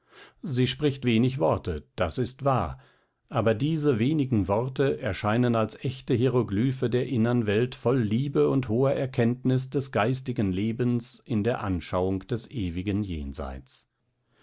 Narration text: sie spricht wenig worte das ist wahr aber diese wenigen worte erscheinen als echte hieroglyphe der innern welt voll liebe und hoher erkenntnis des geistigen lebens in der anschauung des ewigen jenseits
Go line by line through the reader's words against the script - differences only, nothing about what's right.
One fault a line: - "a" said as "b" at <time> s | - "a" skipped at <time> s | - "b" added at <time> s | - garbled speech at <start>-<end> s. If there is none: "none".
none